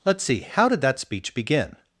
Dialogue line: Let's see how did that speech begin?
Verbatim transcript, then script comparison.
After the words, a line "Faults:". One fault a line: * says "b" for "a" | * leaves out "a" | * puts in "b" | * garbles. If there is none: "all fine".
Let's see how did that speech begin?
Faults:
all fine